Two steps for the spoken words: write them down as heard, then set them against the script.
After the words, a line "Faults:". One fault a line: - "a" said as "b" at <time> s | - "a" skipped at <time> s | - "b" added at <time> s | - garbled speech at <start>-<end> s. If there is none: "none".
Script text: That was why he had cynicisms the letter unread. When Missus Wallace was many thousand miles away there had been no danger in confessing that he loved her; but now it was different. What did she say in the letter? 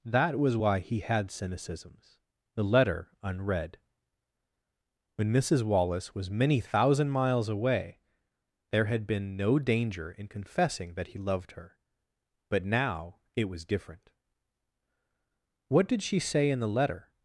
That was why he had cynicisms the letter unread. When Missus Wallace was many thousand miles away there had been no danger in confessing that he loved her; but now it was different. What did she say in the letter?
Faults:
none